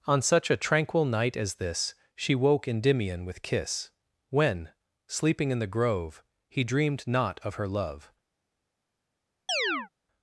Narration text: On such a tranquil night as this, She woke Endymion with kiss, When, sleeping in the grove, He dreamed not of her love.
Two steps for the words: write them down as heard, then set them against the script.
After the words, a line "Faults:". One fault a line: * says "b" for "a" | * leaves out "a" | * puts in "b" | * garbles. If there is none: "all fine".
On such a tranquil night as this, She woke Endymion with kiss, When, sleeping in the grove, He dreamed not of her love.
Faults:
all fine